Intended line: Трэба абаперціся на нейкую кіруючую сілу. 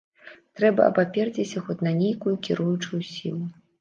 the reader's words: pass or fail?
fail